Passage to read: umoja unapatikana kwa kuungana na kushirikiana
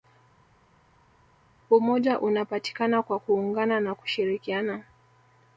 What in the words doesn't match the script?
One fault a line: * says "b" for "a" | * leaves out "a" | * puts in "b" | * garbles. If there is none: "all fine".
all fine